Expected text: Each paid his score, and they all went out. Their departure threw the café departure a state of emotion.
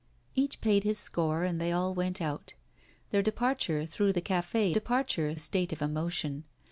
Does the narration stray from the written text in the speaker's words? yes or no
no